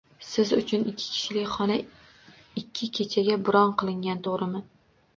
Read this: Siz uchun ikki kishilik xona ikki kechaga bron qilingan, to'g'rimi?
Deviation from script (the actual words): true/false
false